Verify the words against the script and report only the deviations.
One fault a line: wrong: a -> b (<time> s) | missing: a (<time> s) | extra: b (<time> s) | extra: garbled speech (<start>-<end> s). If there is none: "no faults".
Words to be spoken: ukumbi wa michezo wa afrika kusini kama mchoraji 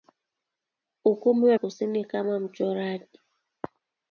missing: michezo wa afrika (1.6 s)